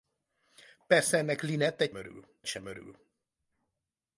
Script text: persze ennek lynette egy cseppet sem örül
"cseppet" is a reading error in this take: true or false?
true